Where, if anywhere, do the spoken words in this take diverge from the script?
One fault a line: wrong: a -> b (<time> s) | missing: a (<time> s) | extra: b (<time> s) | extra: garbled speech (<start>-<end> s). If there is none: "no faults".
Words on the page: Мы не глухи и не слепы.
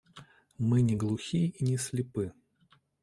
no faults